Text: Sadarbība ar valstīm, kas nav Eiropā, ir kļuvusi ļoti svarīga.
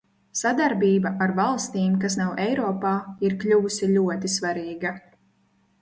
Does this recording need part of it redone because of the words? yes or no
no